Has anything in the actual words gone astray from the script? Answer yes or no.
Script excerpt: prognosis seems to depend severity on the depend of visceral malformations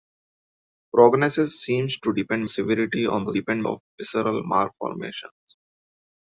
no